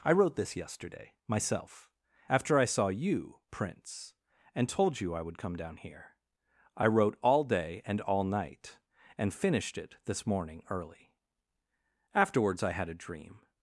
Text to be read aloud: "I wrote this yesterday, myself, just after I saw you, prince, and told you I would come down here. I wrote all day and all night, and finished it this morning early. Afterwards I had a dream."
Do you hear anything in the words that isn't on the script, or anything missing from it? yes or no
yes